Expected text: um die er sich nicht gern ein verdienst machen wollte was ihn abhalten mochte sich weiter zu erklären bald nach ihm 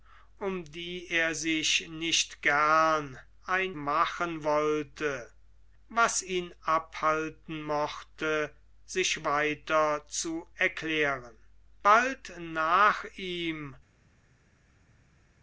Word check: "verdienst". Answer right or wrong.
wrong